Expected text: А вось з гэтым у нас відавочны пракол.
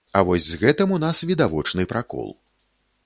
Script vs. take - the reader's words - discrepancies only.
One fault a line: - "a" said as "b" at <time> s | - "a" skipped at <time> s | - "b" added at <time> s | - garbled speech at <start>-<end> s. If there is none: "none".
none